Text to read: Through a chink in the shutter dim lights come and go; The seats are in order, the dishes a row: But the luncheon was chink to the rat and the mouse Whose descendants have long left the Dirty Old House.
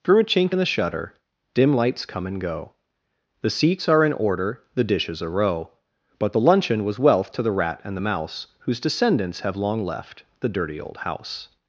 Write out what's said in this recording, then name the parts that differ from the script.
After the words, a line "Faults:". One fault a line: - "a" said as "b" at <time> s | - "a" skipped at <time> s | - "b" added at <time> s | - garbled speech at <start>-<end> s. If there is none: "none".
Through a chink in the shutter dim lights come and go; The seats are in order, the dishes a row: But the luncheon was wealth to the rat and the mouse Whose descendants have long left the Dirty Old House.
Faults:
- "chink" said as "wealth" at 7.0 s